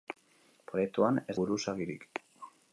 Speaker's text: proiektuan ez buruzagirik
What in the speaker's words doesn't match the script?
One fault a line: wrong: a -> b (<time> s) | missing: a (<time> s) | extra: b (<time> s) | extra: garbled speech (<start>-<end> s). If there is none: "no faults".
no faults